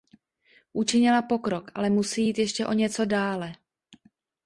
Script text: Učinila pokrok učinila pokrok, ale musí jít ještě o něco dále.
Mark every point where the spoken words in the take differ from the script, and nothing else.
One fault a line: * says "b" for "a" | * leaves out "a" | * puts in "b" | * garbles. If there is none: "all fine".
* leaves out "učinila pokrok"